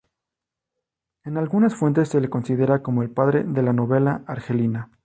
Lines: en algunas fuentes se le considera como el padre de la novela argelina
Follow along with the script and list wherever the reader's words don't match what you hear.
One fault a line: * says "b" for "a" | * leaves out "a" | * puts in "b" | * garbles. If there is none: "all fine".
all fine